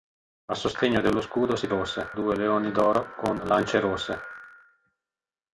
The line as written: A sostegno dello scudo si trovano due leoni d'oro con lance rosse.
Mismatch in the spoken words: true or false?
true